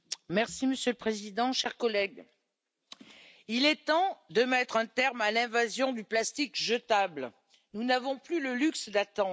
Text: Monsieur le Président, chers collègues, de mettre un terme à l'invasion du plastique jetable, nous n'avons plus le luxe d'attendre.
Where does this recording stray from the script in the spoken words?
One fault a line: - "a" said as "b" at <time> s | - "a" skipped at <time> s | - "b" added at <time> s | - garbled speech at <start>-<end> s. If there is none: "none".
- "il est temps" added at 3.5 s